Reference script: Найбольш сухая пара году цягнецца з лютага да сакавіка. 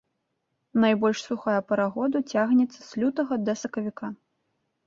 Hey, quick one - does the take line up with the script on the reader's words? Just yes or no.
yes